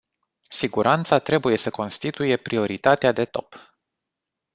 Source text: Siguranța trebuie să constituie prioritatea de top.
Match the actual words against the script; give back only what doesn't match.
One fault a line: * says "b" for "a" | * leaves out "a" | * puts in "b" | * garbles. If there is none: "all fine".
all fine